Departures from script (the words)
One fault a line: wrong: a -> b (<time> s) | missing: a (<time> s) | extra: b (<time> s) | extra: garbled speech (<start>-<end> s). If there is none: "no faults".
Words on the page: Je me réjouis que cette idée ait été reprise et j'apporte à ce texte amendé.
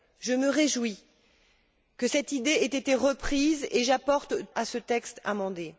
no faults